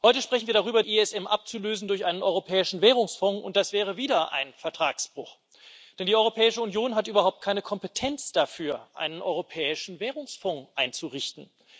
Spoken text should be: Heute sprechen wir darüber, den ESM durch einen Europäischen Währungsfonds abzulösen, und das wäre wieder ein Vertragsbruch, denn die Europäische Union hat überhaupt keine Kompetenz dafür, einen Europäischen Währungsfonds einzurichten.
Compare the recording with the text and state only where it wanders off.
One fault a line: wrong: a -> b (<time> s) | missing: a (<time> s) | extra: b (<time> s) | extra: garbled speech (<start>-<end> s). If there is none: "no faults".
missing: den (0.8 s)